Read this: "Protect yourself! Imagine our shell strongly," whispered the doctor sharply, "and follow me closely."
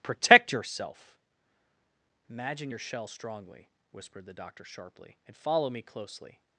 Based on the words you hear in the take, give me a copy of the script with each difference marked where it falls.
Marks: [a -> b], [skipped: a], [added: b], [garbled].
"Protect yourself! Imagine [our -> your] shell strongly," whispered the doctor sharply, "and follow me closely."